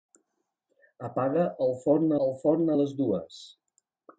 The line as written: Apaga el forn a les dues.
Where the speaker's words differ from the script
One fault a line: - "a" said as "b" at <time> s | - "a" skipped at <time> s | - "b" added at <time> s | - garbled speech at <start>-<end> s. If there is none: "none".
- "el forn" added at 2.3 s